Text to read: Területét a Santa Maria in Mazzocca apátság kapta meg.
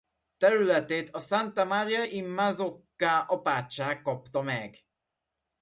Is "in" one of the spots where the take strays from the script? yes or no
no